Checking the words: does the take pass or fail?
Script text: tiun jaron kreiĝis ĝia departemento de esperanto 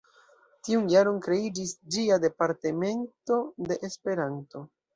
pass